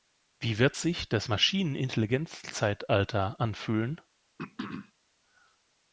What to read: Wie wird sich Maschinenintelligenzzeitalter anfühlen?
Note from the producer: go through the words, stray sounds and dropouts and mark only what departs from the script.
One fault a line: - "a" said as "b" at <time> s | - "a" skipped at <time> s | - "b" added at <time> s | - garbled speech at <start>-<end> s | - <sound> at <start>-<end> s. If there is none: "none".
- "das" added at 1.1 s
- throat clearing at 4.4-4.9 s